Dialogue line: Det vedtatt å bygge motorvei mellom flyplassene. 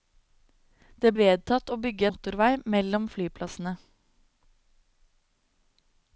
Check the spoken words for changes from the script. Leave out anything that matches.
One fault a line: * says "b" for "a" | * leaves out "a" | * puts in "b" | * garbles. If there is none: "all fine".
all fine